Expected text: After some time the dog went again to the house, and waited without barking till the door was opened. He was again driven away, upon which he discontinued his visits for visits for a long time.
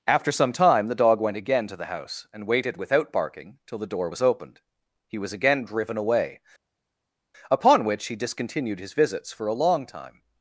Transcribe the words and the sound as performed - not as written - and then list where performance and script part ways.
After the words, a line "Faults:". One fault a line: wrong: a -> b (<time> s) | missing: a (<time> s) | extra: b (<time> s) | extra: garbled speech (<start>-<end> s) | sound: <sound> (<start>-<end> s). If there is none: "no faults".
After some time the dog went again to the house, and waited without barking till the door was opened. He was again driven away, upon which he discontinued his visits for a long time.
Faults:
missing: visits for (9.5 s)